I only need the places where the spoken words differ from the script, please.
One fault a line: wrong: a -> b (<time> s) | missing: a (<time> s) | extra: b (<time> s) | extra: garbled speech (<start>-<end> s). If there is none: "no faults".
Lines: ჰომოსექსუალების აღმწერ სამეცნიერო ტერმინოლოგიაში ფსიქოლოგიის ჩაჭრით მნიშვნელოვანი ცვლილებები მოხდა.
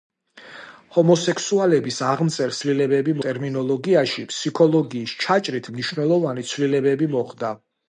wrong: სამეცნიერო -> ცვლილებები (2.6 s)